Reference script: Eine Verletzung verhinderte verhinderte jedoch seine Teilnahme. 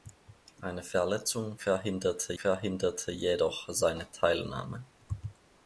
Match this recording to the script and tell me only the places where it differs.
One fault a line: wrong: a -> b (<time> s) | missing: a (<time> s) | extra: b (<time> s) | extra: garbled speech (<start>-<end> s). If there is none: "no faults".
no faults